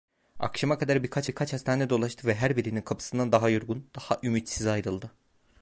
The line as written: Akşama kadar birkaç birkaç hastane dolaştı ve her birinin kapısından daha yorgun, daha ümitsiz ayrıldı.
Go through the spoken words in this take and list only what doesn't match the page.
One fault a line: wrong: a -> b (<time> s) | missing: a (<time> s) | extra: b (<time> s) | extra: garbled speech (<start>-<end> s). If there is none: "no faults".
no faults